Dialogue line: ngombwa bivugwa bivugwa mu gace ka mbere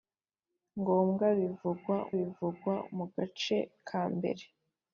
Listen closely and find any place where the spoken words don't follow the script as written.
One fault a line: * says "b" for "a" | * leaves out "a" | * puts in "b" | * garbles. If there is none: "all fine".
all fine